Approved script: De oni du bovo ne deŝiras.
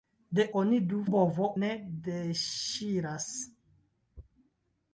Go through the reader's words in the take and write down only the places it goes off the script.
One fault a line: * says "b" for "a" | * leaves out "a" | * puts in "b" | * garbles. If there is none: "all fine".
all fine